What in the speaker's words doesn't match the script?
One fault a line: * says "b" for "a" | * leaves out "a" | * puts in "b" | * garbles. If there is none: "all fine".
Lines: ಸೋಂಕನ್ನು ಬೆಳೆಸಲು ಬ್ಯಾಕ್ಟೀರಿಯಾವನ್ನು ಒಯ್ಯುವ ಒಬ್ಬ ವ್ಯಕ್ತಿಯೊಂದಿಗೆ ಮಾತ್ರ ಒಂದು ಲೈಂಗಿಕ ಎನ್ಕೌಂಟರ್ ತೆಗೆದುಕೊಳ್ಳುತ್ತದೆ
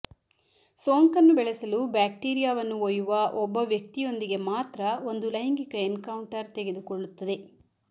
all fine